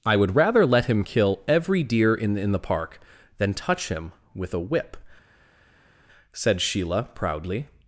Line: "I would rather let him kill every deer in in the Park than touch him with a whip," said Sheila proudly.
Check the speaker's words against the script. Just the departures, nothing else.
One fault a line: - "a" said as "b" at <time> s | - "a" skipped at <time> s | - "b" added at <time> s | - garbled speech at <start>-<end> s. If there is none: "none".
none